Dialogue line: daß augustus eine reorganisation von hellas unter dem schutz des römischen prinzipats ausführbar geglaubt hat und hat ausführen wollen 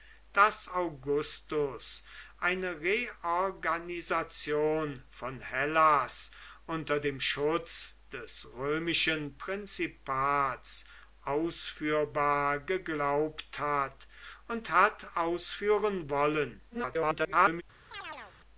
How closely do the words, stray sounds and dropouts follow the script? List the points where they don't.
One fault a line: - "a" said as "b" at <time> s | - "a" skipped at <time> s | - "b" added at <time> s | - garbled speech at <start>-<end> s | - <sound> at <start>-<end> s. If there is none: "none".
- garbled speech at 16.7-17.6 s
- chirp at 17.9-18.3 s